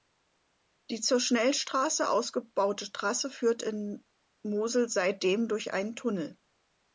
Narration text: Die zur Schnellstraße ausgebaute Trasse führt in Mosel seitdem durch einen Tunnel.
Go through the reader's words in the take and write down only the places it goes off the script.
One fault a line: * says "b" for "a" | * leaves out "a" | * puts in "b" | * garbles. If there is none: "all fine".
all fine